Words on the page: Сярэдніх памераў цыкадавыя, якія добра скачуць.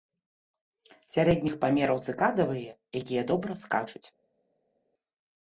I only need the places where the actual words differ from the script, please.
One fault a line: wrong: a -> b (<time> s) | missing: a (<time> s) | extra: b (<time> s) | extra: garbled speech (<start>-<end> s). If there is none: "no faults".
no faults